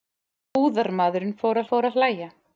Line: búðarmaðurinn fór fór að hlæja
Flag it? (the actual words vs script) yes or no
no